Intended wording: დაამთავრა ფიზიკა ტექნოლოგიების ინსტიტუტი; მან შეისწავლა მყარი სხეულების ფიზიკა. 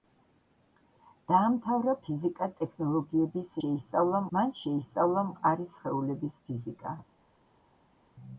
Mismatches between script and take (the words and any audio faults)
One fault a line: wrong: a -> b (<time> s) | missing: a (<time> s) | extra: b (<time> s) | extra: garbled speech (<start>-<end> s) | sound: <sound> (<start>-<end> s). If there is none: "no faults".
wrong: ინსტიტუტი -> შეისწავლა (3.6 s)